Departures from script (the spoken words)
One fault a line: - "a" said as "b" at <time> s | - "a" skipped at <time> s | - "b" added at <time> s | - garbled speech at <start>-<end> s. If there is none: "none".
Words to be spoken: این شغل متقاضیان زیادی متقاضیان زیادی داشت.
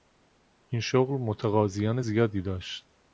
- "متقاضیان زیادی" skipped at 2.4 s